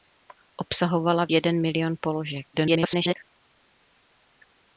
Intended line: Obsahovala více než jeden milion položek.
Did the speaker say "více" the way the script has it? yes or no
no